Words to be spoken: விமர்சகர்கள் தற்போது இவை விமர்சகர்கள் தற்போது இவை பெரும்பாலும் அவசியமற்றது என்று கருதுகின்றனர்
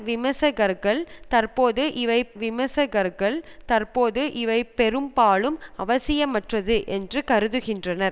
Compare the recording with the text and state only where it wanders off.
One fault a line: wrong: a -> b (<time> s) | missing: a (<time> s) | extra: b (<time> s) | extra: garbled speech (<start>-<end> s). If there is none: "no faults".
no faults